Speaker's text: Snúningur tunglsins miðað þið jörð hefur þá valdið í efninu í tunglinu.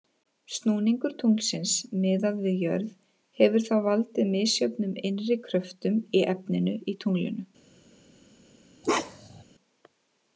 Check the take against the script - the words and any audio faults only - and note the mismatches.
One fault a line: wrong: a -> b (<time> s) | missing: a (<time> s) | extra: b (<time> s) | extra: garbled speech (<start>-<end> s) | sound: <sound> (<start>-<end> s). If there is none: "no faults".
wrong: þið -> við (2.5 s)
extra: misjöfnum innri kröftum (4.3 s)
sound: bark (8.8-9.4 s)